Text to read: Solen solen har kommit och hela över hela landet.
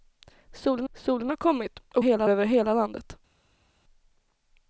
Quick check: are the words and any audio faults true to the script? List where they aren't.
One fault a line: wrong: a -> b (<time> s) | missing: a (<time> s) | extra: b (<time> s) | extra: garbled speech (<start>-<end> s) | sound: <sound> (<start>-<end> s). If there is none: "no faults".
no faults